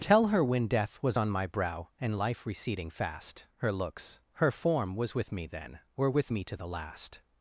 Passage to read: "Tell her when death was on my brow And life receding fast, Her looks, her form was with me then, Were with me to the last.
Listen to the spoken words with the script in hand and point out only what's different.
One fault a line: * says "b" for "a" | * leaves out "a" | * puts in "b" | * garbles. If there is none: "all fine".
all fine